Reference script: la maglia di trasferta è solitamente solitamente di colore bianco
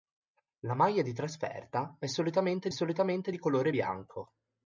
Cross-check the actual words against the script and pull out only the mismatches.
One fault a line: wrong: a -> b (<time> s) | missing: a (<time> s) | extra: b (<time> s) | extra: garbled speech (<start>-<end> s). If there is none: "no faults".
no faults